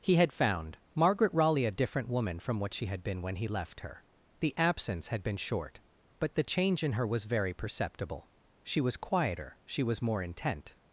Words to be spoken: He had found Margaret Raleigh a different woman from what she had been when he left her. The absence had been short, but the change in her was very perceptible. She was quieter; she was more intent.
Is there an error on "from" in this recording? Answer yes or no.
no